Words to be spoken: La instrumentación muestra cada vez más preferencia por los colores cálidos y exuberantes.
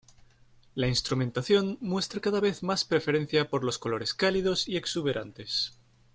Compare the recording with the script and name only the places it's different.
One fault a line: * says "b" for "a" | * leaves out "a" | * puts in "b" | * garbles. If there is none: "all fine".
all fine